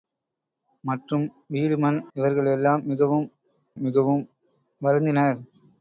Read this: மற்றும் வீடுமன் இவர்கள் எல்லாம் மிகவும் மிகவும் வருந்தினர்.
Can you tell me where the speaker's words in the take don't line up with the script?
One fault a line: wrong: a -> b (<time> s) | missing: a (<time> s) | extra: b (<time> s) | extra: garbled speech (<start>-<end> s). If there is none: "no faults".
no faults